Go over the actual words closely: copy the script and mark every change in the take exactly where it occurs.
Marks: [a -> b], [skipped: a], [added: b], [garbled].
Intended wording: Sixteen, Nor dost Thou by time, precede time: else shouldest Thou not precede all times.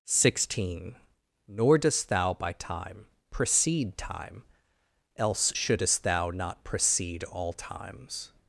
Sixteen, Nor dost Thou by time, precede time: else shouldest Thou not precede all times.